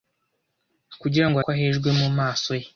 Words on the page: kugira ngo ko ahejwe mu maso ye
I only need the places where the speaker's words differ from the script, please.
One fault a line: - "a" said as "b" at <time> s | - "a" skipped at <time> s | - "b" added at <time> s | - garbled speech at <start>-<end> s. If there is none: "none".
none